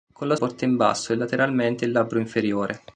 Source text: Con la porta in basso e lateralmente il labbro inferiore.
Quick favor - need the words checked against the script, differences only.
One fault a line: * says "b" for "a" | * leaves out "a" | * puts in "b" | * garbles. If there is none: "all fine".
all fine